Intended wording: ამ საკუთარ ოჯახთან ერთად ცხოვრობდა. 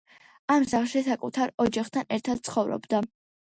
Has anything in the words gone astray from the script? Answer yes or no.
yes